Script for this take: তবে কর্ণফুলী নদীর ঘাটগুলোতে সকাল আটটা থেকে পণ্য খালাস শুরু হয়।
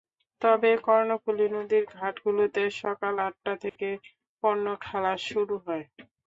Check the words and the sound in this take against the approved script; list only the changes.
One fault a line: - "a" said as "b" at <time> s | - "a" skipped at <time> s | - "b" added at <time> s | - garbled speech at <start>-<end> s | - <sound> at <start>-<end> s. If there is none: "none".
- dropout at 3.7-3.8 s